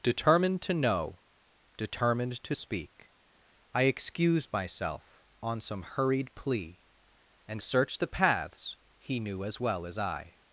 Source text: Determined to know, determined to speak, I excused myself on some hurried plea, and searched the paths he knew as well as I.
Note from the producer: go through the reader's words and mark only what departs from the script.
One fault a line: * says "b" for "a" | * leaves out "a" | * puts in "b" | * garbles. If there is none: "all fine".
all fine